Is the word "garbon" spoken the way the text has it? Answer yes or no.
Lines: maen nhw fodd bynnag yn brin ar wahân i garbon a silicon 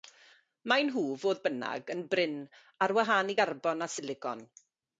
yes